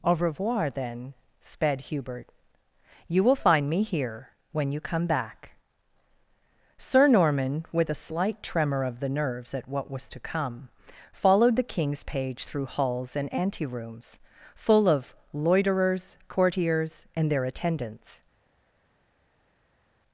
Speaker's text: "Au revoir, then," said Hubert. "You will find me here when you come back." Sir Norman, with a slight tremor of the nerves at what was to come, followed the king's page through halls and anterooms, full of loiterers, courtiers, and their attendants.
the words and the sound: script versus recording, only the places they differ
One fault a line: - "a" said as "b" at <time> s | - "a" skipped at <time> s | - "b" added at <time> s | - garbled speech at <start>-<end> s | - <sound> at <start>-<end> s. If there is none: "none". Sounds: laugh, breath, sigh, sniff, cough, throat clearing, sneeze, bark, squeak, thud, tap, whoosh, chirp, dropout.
- "said" said as "sped" at 1.4 s